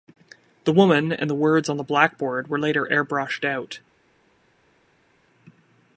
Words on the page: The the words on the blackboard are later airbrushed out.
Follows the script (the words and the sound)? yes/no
no